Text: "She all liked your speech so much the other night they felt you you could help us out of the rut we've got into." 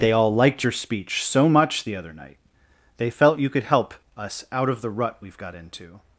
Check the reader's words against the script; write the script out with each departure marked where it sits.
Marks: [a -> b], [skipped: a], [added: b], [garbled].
["She -> They] all liked your speech so much the other night they felt you [skipped: you] could help us out of the rut we've got into."